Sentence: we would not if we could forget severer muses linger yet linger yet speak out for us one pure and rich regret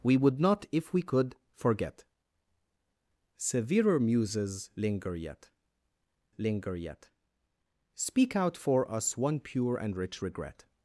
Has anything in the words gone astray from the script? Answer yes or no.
no